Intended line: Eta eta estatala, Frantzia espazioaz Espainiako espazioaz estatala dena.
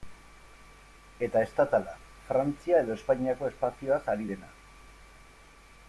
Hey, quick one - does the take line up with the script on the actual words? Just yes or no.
no